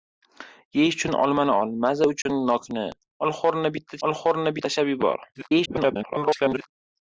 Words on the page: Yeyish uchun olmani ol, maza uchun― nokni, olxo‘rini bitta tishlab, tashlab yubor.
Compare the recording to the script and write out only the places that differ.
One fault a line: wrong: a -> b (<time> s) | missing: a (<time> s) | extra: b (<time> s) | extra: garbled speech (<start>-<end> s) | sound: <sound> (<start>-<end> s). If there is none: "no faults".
sound: dropout (2.2-2.3 s)
wrong: tishlab -> olxo‘rini (4.1 s)
extra: garbled speech (5.3-6.7 s)